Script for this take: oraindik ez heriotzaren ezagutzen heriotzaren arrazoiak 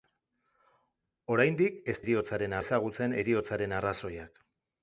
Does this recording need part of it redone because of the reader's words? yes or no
no